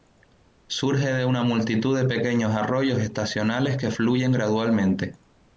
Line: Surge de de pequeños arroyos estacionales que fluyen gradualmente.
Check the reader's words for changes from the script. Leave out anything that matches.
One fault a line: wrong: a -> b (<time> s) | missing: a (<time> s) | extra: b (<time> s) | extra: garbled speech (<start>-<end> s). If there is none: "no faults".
extra: una multitud (1.2 s)